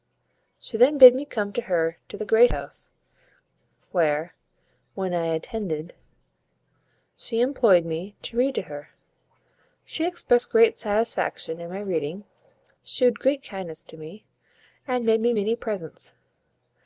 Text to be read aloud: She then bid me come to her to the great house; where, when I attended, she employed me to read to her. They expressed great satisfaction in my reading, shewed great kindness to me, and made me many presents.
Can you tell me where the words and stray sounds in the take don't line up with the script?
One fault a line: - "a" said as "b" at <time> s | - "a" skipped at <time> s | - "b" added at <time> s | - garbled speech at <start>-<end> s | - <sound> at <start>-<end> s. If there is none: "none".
- "They" said as "She" at 9.8 s